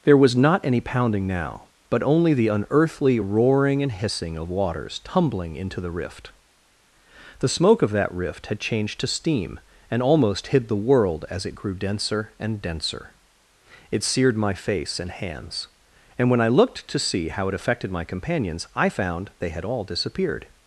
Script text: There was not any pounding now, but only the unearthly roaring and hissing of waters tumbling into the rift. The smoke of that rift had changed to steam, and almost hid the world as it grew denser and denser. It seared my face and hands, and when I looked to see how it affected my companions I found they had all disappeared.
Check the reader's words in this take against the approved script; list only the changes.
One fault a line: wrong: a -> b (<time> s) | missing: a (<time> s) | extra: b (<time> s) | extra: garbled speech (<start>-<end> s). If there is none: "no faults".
no faults